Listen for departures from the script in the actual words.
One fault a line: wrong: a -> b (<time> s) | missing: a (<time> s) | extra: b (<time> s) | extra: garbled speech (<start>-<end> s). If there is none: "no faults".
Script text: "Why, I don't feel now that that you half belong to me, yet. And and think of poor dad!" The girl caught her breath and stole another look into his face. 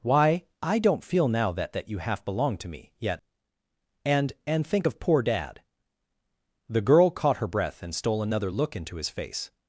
no faults